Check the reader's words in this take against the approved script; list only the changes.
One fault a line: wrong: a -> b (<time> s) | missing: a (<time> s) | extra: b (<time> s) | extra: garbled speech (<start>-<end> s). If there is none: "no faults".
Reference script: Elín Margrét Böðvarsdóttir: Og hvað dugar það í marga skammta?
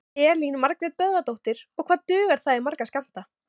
no faults